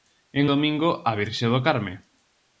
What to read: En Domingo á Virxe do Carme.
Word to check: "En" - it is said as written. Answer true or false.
true